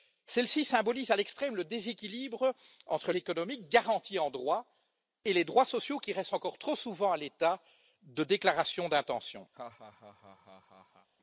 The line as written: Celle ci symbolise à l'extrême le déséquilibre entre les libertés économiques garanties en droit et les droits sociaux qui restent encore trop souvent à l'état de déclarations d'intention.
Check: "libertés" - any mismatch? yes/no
yes